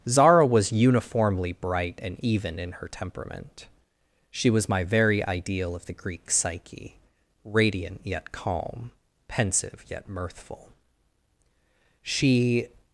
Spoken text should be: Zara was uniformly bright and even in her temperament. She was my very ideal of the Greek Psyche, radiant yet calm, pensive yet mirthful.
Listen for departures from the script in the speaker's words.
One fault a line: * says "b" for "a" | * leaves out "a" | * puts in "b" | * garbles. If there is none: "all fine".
* puts in "She"